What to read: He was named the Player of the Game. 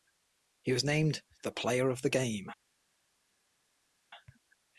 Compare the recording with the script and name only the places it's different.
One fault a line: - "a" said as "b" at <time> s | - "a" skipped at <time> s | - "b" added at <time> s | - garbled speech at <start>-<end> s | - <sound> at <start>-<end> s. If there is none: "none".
none